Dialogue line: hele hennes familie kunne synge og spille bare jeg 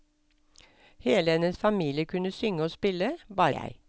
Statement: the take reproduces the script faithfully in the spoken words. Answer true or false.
true